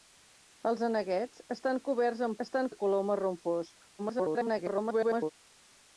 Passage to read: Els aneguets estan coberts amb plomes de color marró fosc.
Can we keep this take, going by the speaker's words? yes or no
no